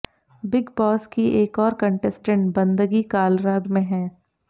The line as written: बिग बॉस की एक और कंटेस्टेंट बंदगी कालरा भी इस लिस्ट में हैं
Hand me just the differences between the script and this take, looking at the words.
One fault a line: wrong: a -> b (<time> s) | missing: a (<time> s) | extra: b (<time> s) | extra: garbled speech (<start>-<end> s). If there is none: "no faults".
missing: भी इस लिस्ट (3.6 s)